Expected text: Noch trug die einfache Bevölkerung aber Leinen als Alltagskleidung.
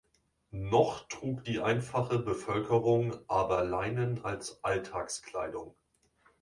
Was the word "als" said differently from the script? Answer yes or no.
no